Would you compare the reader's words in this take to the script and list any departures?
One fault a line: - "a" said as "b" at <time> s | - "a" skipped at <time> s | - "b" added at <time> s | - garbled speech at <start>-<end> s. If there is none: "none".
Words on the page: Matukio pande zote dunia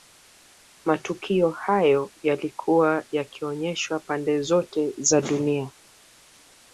- "hayo yalikuwa yakionyeshwa" added at 1.5 s
- "za" added at 5.0 s